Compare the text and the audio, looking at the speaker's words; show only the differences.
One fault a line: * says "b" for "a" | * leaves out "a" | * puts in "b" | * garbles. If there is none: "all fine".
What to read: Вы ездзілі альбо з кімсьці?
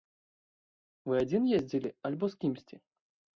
* puts in "адзін"